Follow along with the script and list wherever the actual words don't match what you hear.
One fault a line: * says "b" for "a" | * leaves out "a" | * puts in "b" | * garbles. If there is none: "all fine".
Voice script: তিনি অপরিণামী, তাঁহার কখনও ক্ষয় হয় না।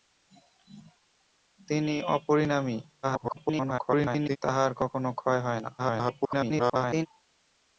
* garbles
* garbles